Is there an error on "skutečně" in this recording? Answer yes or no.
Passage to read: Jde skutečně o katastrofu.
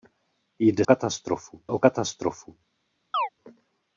yes